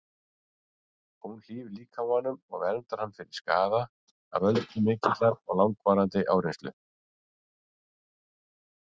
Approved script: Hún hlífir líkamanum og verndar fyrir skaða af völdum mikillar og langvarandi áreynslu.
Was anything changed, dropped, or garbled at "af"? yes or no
no